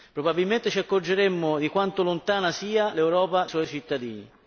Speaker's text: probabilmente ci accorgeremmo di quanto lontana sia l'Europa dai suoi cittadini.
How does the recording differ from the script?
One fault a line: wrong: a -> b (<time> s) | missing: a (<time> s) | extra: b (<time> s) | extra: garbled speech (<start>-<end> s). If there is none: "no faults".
missing: dai (3.5 s)